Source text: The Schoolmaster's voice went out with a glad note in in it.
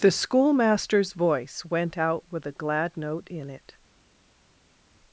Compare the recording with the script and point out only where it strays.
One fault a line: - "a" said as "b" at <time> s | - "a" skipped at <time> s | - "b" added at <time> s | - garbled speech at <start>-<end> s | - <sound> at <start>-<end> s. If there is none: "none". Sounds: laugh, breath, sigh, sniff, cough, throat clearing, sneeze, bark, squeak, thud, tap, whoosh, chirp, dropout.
- "in" skipped at 3.5 s